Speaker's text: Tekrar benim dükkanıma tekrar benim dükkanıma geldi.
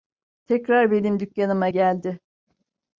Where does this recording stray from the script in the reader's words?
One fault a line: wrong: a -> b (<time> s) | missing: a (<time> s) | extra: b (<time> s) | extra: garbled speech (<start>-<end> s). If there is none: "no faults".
missing: tekrar benim dükkanıma (1.7 s)